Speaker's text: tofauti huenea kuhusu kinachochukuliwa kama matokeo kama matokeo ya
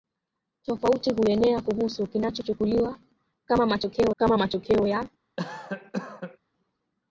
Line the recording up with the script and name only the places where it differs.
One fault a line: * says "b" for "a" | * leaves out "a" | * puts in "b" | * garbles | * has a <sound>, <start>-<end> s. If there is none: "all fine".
* has a cough, 5.4-6.4 s